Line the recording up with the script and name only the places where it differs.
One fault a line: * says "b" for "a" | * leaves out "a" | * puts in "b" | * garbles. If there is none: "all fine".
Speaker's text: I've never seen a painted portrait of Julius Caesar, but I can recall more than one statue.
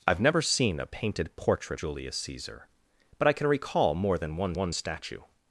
* leaves out "of"
* puts in "one"